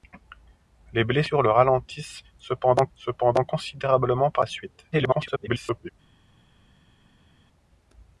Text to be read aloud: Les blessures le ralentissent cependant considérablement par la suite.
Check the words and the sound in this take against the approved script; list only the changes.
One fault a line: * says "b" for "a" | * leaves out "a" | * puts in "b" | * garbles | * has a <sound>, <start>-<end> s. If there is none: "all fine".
* puts in "cependant"
* garbles